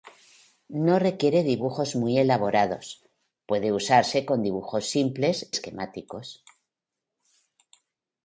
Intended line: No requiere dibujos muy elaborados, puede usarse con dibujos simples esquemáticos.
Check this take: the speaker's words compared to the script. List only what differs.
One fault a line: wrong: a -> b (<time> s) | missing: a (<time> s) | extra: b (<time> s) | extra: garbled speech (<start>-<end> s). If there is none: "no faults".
no faults